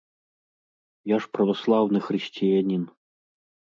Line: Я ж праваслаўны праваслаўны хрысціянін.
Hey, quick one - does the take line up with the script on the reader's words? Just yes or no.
no